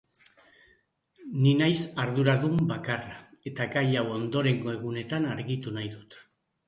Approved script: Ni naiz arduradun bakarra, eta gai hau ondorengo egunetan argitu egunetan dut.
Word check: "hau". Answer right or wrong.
right